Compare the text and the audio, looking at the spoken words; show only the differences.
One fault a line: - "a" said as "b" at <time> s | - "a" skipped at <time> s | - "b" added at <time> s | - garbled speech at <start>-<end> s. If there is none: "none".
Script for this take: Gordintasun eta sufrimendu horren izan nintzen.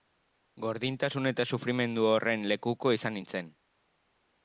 - "lekuko" added at 2.5 s